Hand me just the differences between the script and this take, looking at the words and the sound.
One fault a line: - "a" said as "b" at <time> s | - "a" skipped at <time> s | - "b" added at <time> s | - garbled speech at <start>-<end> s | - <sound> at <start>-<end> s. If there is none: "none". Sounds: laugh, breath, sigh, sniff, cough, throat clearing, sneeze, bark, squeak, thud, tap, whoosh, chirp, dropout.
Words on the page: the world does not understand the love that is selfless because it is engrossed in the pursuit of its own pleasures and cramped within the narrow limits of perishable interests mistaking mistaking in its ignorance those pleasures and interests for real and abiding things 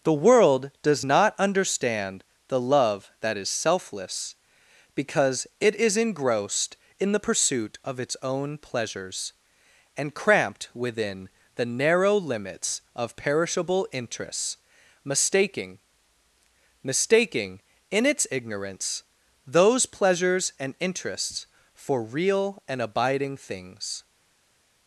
none